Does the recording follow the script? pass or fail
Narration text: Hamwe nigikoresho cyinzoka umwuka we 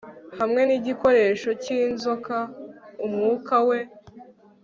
pass